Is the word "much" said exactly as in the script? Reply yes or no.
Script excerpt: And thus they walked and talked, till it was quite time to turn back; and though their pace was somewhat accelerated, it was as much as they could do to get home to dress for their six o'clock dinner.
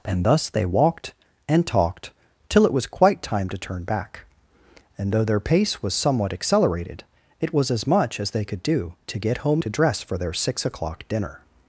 yes